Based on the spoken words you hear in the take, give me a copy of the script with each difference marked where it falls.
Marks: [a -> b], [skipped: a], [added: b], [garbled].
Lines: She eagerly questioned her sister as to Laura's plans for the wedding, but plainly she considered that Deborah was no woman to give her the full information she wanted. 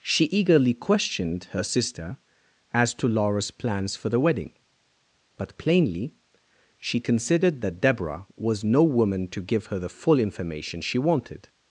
She eagerly questioned her sister as to Laura's plans for the wedding, but plainly she considered that Deborah was no woman to give her the full information she wanted.